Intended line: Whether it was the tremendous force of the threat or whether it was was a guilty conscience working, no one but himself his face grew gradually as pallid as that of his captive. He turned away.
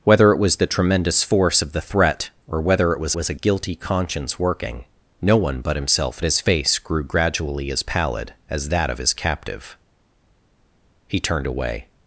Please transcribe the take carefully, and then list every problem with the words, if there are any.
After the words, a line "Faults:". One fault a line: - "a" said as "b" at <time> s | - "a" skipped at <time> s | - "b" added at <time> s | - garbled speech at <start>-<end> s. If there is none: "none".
Whether it was the tremendous force of the threat or whether it was was a guilty conscience working, no one but himself his face grew gradually as pallid as that of his captive. He turned away.
Faults:
none